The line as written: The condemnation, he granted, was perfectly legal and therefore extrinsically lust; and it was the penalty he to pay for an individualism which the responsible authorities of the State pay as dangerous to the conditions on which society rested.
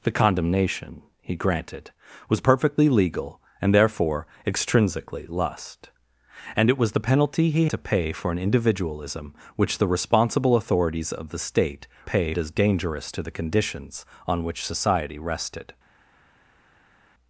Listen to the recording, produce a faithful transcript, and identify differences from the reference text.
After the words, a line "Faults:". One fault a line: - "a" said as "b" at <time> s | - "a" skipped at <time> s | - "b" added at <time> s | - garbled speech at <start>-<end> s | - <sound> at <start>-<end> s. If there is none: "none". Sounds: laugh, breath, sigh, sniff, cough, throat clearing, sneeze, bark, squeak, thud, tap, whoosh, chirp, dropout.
The condemnation, he granted, was perfectly legal and therefore extrinsically lust; and it was the penalty he to pay for an individualism which the responsible authorities of the State pay as dangerous to the conditions on which society rested.
Faults:
none